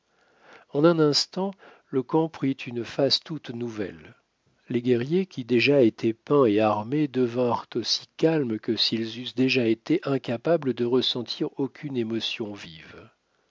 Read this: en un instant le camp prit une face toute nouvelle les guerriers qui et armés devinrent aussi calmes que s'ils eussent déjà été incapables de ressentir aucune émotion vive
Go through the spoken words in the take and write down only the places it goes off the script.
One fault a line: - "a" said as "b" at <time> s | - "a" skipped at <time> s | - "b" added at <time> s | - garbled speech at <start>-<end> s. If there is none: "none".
- "déjà étaient peints" added at 5.5 s